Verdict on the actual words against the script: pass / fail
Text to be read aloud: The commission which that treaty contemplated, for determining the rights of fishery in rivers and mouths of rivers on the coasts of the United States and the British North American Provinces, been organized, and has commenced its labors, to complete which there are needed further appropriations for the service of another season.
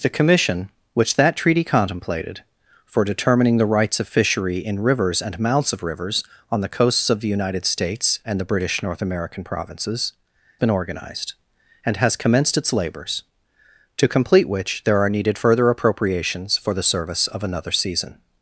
pass